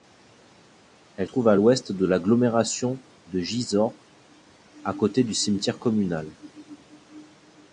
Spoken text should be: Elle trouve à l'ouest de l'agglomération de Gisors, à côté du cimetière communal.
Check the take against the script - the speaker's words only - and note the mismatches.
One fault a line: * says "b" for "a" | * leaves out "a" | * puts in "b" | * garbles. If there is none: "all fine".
all fine